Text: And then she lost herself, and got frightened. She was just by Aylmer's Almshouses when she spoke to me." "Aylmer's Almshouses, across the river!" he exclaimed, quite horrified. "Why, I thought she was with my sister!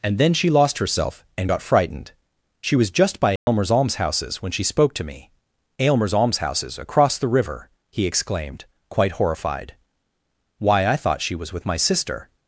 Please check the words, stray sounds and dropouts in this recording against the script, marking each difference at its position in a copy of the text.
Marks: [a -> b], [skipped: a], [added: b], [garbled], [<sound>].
And then she lost herself, and got frightened. She was just by Aylmer's [dropout] Almshouses when she spoke to me." "Aylmer's Almshouses, across the river!" he exclaimed, quite horrified. "Why, I thought she was with my sister!